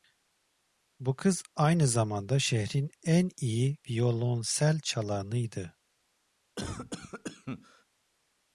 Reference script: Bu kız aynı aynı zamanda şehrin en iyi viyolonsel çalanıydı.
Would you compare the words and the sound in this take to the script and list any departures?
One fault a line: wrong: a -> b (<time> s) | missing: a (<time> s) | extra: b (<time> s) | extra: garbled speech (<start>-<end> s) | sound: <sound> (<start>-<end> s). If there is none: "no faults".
missing: aynı (1.9 s)
sound: cough (6.6-7.8 s)